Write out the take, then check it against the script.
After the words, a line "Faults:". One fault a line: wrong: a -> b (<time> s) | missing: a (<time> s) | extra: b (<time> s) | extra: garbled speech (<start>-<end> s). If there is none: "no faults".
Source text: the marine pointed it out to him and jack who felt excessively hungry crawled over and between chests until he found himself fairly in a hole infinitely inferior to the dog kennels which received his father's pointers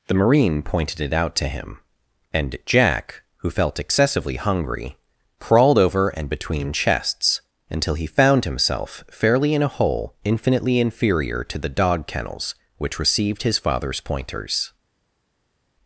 the marine pointed it out to him and jack who felt excessively hungry crawled over and between chests until he found himself fairly in a hole infinitely inferior to the dog kennels which received his father's pointers
Faults:
no faults